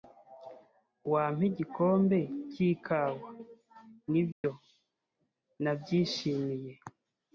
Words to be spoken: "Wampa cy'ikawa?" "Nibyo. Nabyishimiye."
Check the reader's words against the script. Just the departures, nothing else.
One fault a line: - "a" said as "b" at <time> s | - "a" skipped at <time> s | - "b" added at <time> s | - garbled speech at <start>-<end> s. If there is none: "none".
- "igikombe" added at 1.5 s